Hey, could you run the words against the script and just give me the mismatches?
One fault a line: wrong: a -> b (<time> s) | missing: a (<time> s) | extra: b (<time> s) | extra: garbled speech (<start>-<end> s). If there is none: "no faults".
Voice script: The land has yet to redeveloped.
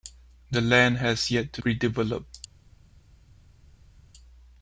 no faults